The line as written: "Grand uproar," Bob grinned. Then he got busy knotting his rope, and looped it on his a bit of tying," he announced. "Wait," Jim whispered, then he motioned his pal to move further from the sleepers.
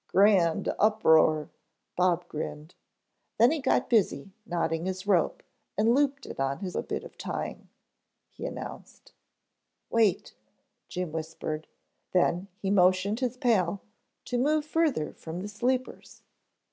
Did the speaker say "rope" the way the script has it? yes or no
yes